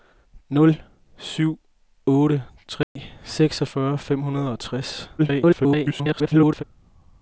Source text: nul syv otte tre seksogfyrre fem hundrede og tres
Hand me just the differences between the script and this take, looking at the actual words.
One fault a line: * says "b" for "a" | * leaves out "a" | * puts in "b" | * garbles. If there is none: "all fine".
* garbles